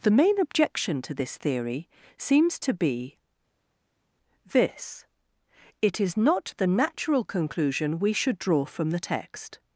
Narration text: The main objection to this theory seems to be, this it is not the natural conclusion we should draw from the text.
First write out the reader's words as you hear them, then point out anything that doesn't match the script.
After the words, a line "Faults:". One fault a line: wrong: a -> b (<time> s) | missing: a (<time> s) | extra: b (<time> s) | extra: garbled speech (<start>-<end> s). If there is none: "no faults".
The main objection to this theory seems to be, this it is not the natural conclusion we should draw from the text.
Faults:
no faults